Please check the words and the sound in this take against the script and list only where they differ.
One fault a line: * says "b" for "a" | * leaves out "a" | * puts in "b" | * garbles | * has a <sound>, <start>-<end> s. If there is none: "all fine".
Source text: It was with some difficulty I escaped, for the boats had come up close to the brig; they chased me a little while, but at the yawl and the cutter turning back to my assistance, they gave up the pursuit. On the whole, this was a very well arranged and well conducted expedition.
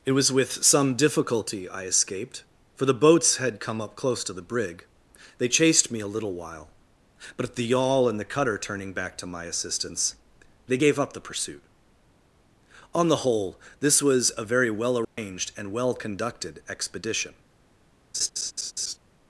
* has a dropout, 15.0-15.2 s
* has a laugh, 18.1-19.0 s